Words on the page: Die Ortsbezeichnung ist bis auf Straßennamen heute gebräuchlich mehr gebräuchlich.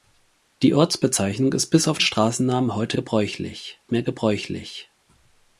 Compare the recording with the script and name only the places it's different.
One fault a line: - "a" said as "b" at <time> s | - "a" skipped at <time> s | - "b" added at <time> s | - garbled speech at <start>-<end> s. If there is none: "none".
none